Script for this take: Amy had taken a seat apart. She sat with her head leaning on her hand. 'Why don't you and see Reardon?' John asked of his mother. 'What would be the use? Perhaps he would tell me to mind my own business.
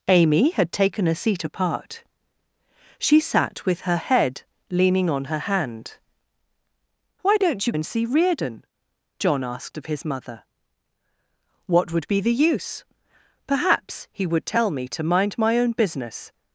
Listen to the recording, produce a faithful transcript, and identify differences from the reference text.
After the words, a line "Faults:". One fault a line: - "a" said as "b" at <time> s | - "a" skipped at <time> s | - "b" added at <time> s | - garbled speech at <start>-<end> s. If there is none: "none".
Amy had taken a seat apart. She sat with her head leaning on her hand. 'Why don't you and see Reardon?' John asked of his mother. 'What would be the use? Perhaps he would tell me to mind my own business.
Faults:
none